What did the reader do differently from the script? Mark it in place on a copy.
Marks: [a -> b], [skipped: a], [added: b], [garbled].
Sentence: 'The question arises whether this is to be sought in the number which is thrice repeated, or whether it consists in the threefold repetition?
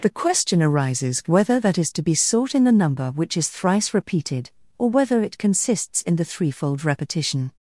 'The question arises whether [this -> that] is to be sought in the number which is thrice repeated, or whether it consists in the threefold repetition?